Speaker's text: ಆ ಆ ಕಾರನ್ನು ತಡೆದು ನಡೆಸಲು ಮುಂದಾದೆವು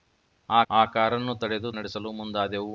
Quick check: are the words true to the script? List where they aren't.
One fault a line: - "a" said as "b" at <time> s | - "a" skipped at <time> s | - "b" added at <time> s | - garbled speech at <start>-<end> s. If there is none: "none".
none